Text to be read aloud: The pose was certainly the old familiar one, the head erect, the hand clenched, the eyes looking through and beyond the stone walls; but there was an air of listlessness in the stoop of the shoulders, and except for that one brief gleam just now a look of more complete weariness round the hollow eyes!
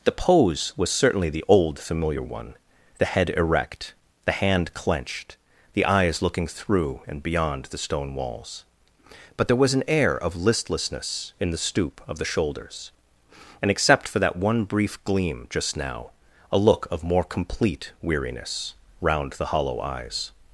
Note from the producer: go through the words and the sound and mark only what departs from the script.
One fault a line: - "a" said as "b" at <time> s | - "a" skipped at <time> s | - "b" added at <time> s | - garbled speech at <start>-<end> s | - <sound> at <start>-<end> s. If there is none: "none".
none